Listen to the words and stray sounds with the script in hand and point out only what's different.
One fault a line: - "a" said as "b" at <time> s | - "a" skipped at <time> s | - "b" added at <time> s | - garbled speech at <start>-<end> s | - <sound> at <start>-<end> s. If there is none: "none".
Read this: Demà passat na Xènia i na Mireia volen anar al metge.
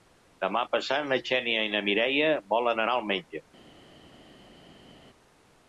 none